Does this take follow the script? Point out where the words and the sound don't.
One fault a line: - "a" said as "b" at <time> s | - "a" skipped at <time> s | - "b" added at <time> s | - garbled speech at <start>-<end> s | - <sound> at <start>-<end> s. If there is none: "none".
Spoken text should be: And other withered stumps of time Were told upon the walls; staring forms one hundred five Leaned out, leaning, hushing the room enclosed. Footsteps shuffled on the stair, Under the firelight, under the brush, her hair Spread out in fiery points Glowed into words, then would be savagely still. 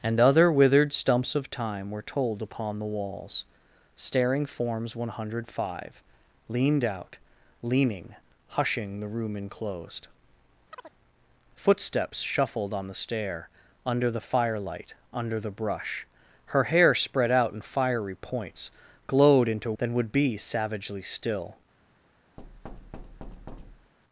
- chirp at 10.7-10.9 s
- "words" skipped at 19.7 s
- thud at 22.4-23.9 s